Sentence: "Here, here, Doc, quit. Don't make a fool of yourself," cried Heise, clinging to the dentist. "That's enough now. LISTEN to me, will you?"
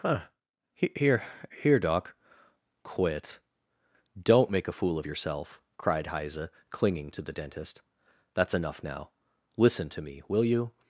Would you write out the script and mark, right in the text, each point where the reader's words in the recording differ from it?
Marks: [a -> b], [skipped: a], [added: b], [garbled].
[added: huh] "Here, here, Doc, quit. Don't make a fool of yourself," cried Heise, clinging to the dentist. "That's enough now. LISTEN to me, will you?"